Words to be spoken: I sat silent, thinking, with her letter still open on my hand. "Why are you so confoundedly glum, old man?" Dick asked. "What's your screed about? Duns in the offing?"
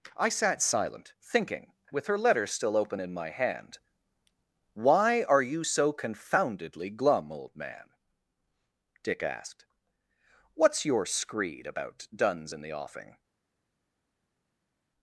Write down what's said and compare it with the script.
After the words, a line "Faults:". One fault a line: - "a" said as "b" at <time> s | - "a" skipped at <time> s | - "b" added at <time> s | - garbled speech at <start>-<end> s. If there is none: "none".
I sat silent, thinking, with her letter still open in my hand. "Why are you so confoundedly glum, old man?" Dick asked. "What's your screed about? Duns in the offing?"
Faults:
- "on" said as "in" at 3.0 s